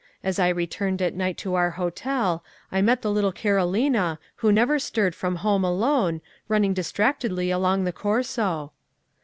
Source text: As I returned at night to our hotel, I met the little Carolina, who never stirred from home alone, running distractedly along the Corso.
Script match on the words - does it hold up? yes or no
yes